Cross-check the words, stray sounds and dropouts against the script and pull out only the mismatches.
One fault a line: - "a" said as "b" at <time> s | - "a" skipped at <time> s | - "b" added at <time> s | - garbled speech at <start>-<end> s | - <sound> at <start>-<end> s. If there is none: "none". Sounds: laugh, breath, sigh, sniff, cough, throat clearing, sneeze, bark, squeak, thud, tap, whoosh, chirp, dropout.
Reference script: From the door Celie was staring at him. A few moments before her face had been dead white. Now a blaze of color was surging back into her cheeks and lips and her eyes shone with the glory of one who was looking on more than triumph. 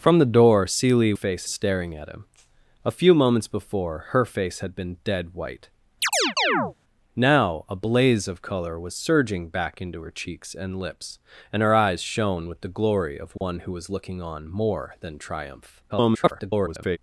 - "was" said as "face" at 1.1 s
- chirp at 6.0-6.7 s
- dropout at 13.4-13.4 s
- garbled speech at 15.9-17.0 s